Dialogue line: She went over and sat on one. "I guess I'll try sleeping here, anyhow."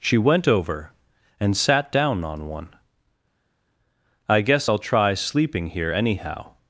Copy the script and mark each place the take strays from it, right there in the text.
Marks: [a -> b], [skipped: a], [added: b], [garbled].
She went over and sat [added: down] on one. "I guess I'll try sleeping here, anyhow."